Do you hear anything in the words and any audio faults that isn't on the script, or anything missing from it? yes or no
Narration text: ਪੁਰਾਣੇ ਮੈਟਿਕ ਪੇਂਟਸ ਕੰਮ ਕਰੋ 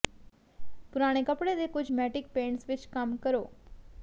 yes